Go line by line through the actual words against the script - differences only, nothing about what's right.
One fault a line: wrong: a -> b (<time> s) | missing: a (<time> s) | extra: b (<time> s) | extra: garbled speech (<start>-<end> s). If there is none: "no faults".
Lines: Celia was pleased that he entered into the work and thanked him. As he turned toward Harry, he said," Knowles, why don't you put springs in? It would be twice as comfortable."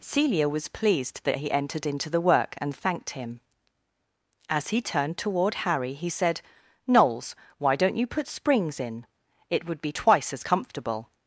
no faults